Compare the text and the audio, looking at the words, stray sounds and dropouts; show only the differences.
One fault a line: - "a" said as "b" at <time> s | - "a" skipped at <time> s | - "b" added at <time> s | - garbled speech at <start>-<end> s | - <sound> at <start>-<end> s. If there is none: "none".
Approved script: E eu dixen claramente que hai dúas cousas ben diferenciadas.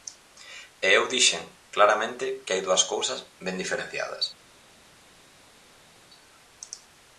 none